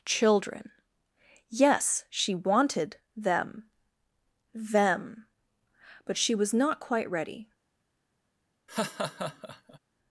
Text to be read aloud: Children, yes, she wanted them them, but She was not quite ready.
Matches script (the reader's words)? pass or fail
pass